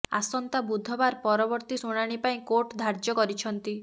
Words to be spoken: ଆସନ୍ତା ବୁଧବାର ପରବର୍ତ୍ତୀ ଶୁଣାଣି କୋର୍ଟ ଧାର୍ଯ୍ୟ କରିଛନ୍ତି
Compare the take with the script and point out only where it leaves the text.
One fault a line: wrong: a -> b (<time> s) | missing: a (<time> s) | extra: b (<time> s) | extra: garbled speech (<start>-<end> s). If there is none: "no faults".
extra: ପାଇଁ (2.2 s)